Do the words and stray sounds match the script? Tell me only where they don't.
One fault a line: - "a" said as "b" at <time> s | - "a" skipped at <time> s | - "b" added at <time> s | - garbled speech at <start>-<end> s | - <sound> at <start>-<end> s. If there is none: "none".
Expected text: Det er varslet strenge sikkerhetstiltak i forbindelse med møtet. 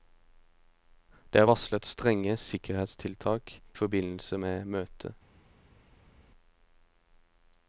- "i" skipped at 3.5 s